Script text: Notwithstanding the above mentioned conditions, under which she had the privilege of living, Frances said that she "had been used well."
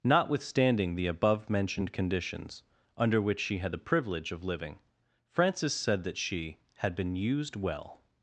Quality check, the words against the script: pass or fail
pass